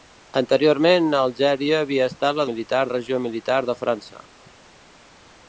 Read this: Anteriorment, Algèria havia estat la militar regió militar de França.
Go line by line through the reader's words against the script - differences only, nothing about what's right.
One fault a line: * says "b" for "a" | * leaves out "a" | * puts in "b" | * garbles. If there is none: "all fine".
all fine